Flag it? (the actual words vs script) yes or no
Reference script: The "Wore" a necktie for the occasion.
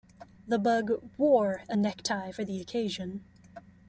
yes